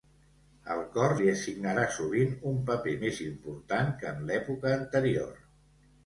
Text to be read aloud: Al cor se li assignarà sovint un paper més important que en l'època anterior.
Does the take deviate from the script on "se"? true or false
true